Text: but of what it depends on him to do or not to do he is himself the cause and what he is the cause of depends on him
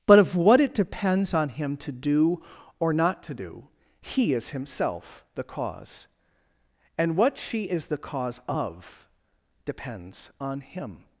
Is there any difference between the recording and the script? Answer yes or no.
yes